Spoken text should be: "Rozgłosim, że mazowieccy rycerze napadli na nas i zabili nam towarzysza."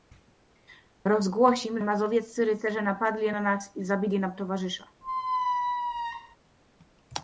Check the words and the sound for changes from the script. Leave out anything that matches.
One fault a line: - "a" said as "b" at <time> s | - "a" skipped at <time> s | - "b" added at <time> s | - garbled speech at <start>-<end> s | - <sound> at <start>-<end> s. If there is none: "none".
- "że" skipped at 1.8 s
- squeak at 5.0-6.4 s